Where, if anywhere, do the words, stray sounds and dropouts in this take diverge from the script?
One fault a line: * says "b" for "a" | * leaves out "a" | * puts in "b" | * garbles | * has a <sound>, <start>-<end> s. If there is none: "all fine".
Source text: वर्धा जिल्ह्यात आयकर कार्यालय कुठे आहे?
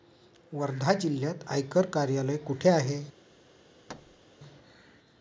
* has a thud, 3.9-4.2 s